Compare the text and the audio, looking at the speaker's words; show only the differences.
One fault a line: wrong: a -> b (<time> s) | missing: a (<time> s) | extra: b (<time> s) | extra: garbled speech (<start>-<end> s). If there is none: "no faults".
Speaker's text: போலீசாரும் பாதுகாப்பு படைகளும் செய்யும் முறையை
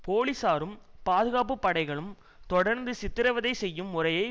extra: தொடர்ந்து சித்திரவதை (2.5 s)